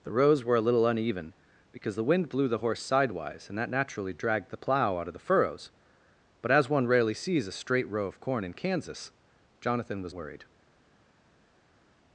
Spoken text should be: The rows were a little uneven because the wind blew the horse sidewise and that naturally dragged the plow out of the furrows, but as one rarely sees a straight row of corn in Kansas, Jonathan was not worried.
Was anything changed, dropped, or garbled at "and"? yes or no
no